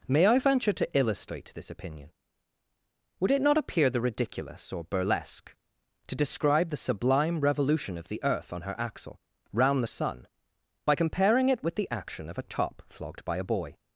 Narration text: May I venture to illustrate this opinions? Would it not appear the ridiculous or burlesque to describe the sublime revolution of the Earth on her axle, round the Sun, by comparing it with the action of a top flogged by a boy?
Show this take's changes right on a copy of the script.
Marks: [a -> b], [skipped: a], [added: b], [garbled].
May I venture to illustrate this [opinions? -> opinion] Would it not appear the ridiculous or burlesque to describe the sublime revolution of the Earth on her axle, round the Sun, by comparing it with the action of a top flogged by a boy?